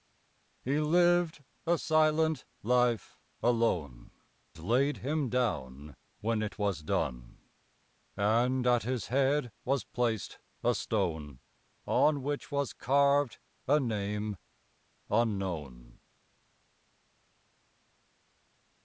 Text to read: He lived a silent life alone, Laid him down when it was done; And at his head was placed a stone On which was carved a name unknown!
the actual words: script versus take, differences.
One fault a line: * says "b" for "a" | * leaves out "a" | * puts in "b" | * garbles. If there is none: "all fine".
all fine